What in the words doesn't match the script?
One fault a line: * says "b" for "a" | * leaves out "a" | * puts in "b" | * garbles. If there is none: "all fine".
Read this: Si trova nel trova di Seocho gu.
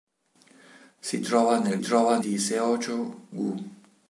all fine